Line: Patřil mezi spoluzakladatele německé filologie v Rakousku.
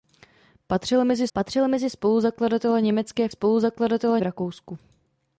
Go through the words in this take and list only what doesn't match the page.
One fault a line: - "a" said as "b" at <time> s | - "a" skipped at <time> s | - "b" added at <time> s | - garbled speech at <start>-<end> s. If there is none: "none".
- "patřil mezi" added at 1.3 s
- "filologie" said as "spoluzakladatele" at 3.3 s